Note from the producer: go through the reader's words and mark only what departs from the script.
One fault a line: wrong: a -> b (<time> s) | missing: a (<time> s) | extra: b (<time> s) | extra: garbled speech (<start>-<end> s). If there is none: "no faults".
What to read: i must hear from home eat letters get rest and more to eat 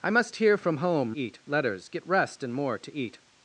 no faults